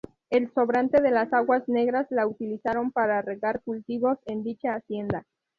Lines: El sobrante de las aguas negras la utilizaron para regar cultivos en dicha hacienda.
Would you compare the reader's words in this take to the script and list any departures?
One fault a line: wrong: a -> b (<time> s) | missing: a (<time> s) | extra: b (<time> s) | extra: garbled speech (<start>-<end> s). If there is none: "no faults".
no faults